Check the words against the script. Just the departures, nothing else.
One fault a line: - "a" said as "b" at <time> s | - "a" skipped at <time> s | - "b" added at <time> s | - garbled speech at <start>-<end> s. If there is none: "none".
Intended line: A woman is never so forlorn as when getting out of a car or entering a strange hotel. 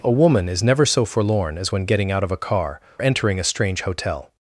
- "or" skipped at 2.8 s